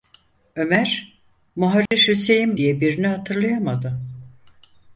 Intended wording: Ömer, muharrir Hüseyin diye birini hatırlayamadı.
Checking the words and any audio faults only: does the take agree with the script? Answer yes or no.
no